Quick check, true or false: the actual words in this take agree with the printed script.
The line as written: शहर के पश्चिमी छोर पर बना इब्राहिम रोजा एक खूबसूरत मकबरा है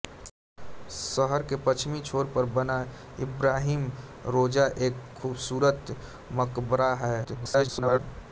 false